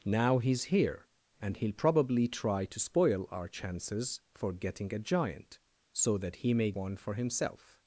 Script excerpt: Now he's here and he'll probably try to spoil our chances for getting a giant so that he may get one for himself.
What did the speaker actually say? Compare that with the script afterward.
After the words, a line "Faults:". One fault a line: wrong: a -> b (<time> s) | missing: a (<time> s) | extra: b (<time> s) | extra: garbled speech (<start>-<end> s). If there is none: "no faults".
Now he's here and he'll probably try to spoil our chances for getting a giant so that he may one for himself.
Faults:
missing: get (6.7 s)